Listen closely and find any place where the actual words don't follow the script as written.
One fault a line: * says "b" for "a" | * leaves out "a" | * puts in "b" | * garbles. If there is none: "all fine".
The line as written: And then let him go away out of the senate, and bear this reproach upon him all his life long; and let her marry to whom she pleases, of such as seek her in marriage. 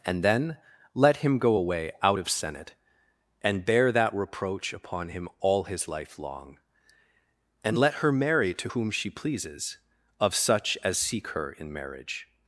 * leaves out "the"
* says "that" for "this"